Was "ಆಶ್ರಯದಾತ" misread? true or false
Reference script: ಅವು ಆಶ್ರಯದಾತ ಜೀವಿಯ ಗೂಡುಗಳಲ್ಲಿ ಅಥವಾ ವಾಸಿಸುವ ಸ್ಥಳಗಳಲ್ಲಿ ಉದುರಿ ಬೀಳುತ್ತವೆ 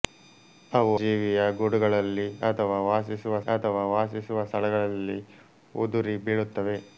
true